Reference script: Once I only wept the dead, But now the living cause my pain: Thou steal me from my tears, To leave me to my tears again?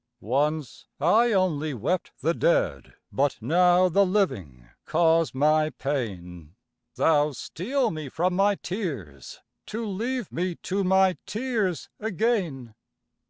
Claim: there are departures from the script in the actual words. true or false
false